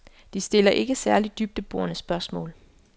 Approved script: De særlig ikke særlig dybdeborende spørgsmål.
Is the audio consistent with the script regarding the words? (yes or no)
no